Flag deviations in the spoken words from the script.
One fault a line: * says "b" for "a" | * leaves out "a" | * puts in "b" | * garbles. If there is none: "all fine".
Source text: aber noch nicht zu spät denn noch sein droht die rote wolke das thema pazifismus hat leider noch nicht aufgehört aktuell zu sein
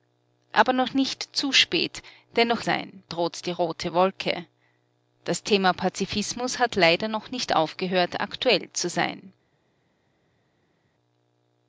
all fine